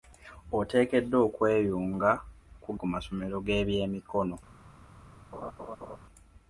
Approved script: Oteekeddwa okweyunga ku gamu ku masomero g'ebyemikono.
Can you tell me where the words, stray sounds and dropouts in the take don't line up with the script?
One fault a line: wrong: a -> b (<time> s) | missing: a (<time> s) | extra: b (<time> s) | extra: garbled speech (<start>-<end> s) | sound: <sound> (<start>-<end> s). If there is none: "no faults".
missing: gamu (2.7 s)
sound: laugh (5.3-6.0 s)